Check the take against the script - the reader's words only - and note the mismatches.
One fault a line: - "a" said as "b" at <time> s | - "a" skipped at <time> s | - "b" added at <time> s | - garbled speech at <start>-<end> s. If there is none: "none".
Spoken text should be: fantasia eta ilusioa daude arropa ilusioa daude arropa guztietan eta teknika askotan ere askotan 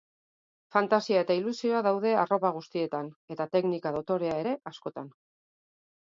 - "ilusioa daude arropa" skipped at 2.5 s
- "askotan" said as "dotorea" at 4.0 s